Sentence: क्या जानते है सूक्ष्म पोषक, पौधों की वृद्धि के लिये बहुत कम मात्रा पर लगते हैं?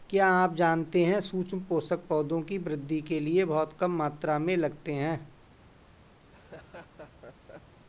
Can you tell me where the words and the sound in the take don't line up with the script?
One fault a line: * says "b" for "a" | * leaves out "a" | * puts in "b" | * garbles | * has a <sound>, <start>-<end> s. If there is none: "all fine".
* puts in "आप"
* says "में" for "पर"
* has a laugh, 6.2-7.8 s